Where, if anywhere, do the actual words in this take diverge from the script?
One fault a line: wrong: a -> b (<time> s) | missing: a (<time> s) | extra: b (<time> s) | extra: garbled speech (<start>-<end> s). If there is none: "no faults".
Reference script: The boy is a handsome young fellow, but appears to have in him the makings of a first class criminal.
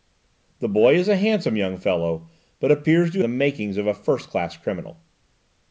missing: have in him (3.2 s)